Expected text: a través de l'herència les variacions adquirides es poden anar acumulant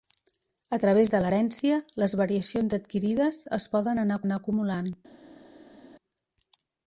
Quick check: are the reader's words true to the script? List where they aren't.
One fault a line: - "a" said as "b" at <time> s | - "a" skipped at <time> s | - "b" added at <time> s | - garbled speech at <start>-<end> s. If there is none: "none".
- "anar" added at 4.3 s